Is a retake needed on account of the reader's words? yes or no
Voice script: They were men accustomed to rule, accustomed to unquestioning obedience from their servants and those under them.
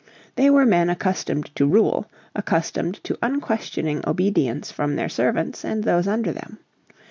no